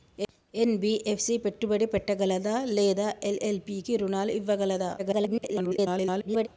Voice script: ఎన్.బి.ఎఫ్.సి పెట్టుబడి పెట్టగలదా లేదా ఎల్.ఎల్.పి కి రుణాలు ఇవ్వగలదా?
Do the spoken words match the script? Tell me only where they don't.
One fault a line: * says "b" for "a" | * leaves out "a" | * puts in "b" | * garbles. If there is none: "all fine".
* garbles